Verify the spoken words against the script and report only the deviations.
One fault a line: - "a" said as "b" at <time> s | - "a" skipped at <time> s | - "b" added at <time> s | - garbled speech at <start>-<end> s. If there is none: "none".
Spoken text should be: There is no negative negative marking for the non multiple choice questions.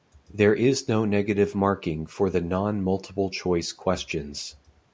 - "negative" skipped at 1.5 s